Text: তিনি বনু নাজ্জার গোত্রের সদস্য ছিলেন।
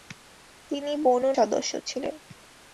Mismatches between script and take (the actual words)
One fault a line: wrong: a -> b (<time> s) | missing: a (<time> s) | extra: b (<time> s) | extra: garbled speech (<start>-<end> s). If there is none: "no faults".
missing: নাজ্জার গোত্রের (1.3 s)